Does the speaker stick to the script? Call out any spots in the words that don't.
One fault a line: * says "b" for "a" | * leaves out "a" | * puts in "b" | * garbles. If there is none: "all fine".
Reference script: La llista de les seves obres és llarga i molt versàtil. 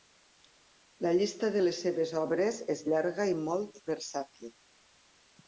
all fine